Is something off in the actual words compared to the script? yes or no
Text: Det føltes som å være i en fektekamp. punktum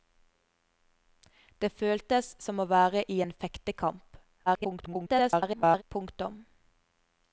yes